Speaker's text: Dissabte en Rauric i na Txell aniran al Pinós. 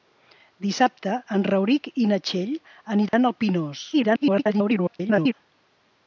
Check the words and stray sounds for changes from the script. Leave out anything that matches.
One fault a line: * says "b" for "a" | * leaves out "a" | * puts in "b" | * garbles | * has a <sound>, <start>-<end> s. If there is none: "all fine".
* has a dropout, 3.1-3.1 s
* garbles